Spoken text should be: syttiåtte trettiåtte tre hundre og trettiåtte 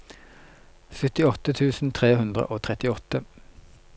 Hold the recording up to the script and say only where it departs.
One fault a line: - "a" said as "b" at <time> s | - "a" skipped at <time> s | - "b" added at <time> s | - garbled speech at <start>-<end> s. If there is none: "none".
- "trettiåtte" said as "tusen" at 1.6 s